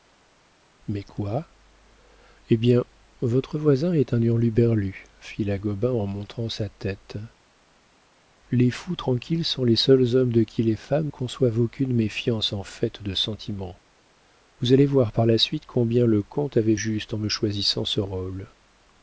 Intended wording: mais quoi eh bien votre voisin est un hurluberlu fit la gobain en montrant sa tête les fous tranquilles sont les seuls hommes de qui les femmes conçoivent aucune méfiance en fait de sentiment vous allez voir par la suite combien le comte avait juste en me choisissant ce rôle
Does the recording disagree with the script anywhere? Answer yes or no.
no